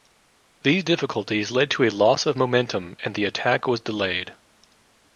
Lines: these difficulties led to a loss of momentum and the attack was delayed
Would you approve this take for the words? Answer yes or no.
yes